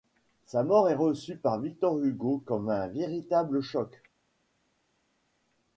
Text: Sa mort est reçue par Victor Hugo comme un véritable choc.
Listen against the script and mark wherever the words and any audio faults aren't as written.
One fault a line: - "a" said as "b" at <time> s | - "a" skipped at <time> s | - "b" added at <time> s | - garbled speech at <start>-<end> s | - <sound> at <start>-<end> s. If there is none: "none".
none